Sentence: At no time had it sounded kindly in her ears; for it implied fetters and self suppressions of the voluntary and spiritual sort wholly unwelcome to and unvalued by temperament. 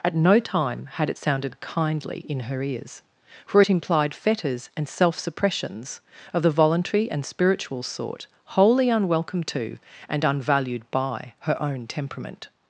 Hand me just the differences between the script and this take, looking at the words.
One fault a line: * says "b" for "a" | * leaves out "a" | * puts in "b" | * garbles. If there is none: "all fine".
* puts in "her own"